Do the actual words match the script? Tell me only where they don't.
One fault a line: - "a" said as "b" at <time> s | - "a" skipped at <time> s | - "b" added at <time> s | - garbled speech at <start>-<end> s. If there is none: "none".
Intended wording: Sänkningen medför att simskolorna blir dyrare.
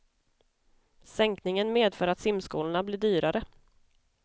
none